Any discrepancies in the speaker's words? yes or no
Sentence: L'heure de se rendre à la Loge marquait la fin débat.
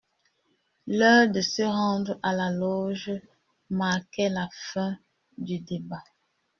yes